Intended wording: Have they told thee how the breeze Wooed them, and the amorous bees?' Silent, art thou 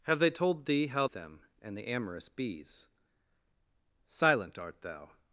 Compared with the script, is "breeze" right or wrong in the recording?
wrong